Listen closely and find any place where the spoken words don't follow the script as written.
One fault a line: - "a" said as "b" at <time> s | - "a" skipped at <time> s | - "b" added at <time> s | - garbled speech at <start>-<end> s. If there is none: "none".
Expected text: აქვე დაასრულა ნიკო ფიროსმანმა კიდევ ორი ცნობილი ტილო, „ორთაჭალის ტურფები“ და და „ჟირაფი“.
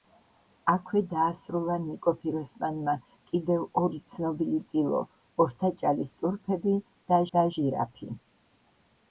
none